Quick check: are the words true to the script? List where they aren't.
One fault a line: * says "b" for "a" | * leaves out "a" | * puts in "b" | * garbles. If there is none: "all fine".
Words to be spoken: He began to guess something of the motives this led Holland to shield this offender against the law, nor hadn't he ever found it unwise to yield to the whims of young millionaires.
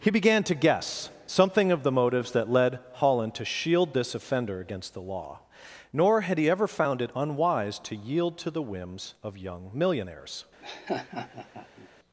* says "that" for "this"
* says "had" for "hadn't"